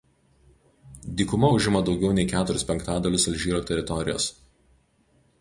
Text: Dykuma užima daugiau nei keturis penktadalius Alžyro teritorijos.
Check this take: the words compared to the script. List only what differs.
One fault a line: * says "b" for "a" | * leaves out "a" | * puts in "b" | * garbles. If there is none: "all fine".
all fine